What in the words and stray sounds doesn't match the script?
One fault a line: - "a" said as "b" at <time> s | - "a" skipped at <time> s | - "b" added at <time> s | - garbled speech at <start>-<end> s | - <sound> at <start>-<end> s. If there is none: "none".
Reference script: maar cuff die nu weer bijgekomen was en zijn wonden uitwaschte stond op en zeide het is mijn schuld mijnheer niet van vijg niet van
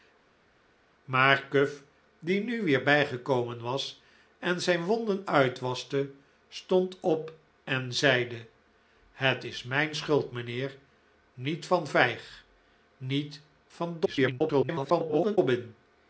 - garbled speech at 14.0-15.4 s